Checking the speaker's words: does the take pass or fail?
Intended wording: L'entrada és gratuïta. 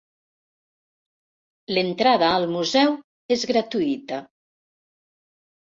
fail